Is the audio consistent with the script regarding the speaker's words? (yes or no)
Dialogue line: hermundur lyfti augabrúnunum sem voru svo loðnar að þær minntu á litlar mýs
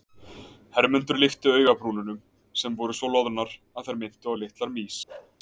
yes